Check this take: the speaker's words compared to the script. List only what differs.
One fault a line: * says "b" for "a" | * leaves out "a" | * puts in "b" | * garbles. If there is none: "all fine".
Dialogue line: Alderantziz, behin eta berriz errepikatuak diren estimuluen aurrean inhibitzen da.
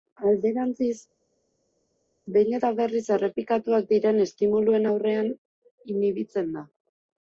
all fine